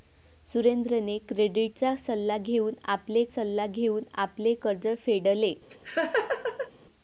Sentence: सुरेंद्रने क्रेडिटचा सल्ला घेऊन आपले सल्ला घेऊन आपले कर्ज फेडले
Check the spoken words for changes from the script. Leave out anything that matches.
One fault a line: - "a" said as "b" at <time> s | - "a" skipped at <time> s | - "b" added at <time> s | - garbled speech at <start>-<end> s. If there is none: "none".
none